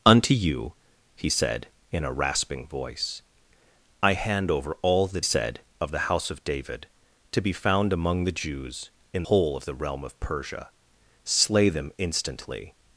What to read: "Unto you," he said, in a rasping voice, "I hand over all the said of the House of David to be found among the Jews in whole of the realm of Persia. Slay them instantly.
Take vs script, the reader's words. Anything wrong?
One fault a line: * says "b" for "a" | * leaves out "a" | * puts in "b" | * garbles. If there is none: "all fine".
all fine